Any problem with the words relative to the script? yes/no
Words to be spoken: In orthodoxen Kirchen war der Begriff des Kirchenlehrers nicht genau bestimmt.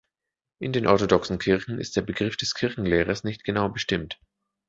yes